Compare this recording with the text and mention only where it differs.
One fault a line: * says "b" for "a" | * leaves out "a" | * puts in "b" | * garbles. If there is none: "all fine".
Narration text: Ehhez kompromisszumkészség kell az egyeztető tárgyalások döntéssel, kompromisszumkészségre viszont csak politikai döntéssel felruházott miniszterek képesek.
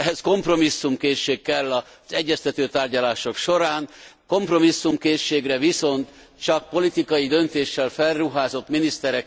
* says "során" for "döntéssel"